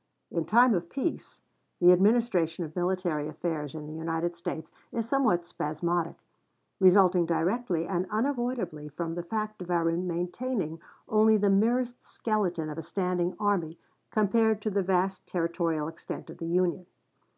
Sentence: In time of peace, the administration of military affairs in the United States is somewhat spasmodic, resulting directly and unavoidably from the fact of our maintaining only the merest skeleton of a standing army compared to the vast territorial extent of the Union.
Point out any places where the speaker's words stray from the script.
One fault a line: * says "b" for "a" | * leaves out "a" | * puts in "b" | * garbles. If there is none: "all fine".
all fine